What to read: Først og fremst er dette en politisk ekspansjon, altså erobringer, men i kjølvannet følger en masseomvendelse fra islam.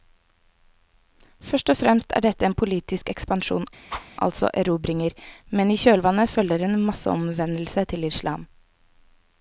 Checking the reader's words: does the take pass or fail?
fail